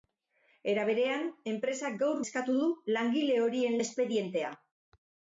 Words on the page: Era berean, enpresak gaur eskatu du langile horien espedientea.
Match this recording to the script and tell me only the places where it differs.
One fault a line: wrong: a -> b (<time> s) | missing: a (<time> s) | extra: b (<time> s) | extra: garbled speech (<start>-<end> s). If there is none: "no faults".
no faults